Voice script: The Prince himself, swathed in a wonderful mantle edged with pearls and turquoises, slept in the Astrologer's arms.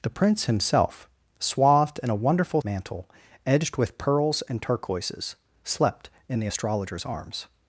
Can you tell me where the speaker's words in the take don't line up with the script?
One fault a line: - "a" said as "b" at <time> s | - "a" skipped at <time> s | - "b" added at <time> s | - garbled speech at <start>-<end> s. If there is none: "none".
none